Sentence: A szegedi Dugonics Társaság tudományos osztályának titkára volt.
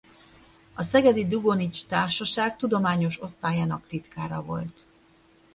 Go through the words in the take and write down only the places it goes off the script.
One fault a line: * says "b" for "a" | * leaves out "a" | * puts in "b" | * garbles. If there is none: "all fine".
all fine